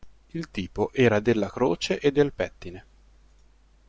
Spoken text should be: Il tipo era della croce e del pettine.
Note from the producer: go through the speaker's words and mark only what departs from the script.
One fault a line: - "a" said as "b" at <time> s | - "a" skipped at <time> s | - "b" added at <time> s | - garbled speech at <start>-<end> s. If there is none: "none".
none